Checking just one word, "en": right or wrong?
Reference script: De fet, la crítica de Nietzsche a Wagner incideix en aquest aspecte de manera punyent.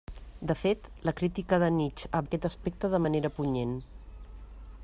wrong